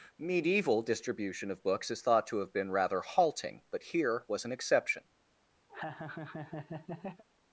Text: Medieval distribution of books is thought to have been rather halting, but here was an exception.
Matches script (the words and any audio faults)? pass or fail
fail